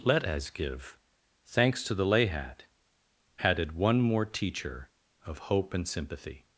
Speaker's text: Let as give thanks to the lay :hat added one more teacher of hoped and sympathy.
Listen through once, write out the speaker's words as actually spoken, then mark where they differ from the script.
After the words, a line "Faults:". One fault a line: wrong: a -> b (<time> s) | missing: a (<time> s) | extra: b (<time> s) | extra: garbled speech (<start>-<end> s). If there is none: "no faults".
Let as give thanks to the lay :hat added one more teacher of hope and sympathy.
Faults:
wrong: hoped -> hope (5.4 s)